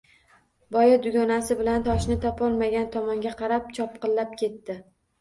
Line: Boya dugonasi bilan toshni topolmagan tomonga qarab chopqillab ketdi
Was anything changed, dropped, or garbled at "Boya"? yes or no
no